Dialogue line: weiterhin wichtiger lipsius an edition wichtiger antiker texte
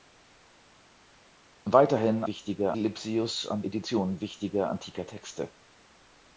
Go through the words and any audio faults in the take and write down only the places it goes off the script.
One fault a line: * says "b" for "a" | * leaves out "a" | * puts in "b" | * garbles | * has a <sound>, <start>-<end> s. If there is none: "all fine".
all fine